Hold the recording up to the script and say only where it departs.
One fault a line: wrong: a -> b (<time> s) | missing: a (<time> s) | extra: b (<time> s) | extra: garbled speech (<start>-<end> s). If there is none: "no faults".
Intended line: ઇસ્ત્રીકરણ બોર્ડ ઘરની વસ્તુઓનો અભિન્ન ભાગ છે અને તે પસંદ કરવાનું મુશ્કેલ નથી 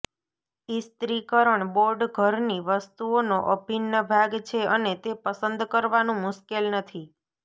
no faults